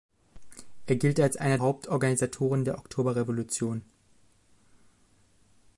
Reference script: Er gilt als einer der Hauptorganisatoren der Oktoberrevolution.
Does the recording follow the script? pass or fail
fail